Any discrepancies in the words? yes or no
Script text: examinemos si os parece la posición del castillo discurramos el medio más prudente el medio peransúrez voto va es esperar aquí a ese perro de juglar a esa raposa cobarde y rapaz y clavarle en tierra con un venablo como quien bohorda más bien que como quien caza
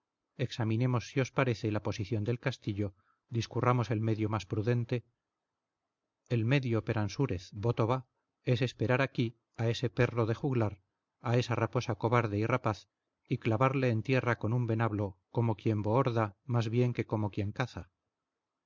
no